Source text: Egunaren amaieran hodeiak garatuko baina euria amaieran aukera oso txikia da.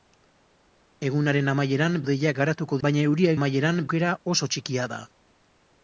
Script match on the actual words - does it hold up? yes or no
yes